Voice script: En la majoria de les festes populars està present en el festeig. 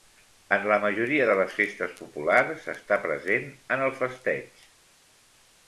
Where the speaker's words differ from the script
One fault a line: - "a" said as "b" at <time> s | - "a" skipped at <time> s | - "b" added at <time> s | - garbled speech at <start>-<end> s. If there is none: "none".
none